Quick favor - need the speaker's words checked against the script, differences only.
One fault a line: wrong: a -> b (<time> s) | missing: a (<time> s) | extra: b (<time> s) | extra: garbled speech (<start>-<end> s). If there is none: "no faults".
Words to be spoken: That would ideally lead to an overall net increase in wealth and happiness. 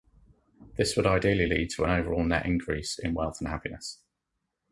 wrong: That -> This (0.8 s)